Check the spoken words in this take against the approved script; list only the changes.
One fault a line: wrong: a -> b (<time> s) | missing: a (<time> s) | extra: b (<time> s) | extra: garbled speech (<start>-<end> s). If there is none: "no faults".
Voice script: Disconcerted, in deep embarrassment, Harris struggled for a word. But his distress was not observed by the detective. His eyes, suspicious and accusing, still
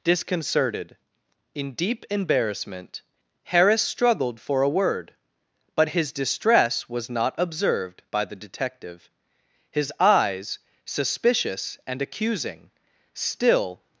no faults